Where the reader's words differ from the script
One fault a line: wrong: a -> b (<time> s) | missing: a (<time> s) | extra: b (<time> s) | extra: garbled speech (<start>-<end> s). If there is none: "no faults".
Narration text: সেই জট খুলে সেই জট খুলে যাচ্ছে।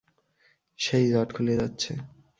missing: সেই জট খুলে (1.5 s)